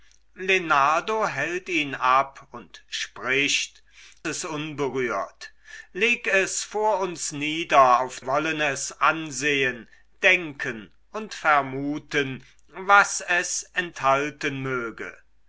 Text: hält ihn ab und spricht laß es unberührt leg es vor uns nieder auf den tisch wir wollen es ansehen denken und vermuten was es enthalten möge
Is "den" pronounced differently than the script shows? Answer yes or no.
yes